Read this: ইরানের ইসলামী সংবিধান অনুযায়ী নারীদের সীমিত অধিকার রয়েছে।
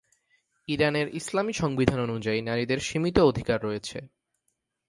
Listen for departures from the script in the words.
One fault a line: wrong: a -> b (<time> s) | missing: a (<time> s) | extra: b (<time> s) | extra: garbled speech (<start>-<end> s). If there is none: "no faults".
no faults